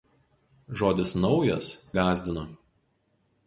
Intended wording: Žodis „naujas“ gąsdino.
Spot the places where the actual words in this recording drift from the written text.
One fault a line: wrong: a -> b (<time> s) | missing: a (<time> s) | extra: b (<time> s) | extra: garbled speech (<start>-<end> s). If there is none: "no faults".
no faults